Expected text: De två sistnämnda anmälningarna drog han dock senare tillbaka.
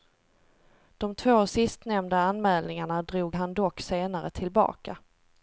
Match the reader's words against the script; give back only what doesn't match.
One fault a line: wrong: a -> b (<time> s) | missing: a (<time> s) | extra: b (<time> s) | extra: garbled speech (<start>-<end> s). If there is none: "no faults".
no faults